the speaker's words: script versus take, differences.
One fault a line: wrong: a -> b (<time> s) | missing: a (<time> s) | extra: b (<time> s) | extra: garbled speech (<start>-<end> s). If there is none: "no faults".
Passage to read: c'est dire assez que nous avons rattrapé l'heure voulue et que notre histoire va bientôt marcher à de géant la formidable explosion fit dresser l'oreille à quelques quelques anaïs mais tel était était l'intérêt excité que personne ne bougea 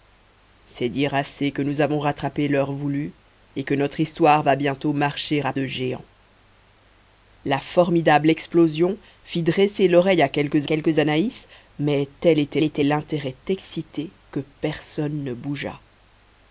no faults